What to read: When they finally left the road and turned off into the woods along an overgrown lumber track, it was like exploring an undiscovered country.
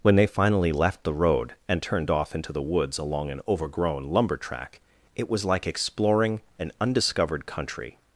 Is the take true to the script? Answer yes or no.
yes